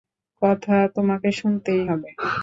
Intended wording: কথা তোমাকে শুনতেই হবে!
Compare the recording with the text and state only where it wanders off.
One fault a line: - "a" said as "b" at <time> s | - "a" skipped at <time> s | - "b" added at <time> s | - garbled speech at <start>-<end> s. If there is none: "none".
none